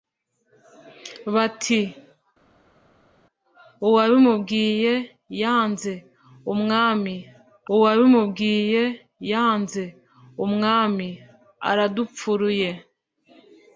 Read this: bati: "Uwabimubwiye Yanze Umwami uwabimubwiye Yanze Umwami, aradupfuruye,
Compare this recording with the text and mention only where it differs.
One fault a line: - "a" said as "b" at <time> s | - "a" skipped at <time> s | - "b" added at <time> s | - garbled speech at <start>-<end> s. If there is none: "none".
none